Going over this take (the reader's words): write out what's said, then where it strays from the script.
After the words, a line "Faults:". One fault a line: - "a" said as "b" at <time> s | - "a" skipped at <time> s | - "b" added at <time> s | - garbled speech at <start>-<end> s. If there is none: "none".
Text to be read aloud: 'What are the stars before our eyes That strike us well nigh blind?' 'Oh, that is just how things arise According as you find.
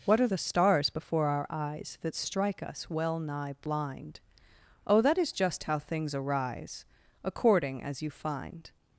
'What are the stars before our eyes That strike us well nigh blind?' 'Oh, that is just how things arise According as you find.
Faults:
none